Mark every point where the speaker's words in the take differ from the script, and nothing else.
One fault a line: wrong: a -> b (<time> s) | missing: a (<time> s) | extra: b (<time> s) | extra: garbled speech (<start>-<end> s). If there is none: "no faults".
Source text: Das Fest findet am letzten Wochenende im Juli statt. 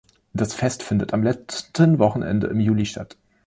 no faults